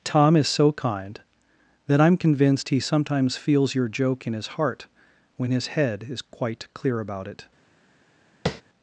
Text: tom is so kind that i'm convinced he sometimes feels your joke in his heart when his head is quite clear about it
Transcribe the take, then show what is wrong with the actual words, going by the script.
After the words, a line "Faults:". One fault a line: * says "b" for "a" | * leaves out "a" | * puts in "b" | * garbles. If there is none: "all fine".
tom is so kind that i'm convinced he sometimes feels your joke in his heart when his head is quite clear about it
Faults:
all fine